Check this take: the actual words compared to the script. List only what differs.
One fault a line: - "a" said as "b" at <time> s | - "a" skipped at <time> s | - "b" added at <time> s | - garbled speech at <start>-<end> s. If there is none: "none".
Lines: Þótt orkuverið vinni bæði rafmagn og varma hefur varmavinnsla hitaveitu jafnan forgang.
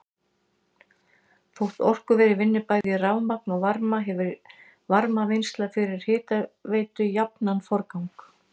- "fyrir" added at 5.8 s